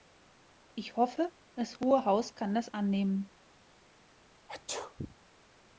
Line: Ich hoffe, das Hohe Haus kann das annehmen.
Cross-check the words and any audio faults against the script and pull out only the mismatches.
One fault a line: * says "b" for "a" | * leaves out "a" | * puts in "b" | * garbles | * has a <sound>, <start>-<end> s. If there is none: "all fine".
* has a sneeze, 4.5-5.1 s